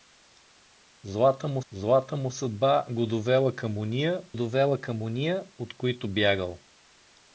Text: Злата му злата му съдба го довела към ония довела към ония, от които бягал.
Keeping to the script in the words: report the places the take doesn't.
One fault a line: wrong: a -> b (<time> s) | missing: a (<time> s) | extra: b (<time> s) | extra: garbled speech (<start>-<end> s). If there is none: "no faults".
no faults